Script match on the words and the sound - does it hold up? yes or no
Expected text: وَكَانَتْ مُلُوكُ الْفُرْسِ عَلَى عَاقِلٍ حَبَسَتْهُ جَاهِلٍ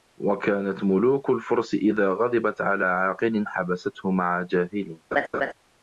no